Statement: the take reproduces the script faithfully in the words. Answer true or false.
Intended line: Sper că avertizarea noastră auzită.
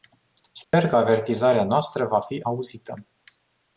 false